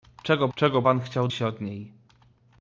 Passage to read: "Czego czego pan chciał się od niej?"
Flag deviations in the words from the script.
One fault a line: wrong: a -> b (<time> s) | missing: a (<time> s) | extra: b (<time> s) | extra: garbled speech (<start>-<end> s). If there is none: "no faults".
no faults